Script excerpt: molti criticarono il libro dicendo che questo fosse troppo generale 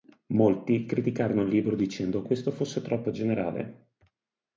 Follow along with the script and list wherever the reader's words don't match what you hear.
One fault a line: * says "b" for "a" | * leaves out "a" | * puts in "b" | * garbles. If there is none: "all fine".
* leaves out "che"